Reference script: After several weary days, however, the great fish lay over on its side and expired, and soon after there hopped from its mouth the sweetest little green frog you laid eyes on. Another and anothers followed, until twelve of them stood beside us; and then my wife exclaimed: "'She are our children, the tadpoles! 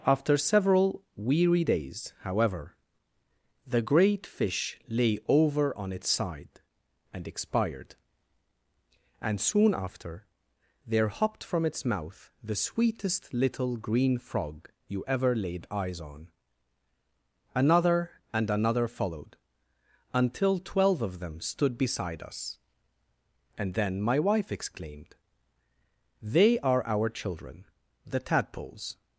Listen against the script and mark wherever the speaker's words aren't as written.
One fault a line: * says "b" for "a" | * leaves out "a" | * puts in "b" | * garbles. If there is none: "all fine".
* puts in "ever"
* says "another" for "anothers"
* says "They" for "She"